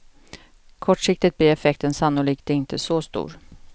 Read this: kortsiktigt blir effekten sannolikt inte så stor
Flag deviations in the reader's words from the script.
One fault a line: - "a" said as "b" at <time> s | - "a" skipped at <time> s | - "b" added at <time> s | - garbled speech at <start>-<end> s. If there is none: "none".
none